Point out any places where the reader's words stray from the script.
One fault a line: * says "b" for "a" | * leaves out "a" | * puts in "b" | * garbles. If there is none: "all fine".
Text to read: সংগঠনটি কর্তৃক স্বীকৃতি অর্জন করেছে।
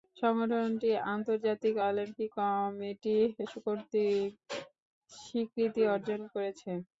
* puts in "আন্তর্জাতিক অলিম্পিক কমিটি"